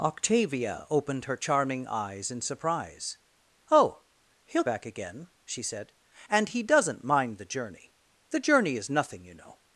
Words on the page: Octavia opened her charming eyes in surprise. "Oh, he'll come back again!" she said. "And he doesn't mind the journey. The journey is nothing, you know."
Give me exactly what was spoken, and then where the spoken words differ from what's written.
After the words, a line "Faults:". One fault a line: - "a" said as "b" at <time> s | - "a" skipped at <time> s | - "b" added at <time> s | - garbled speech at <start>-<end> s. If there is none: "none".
Octavia opened her charming eyes in surprise. "Oh, he'll back again!" she said. "And he doesn't mind the journey. The journey is nothing, you know."
Faults:
- "come" skipped at 4.6 s